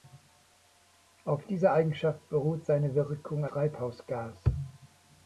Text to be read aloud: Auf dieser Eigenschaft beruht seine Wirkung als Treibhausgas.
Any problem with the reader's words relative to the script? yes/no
yes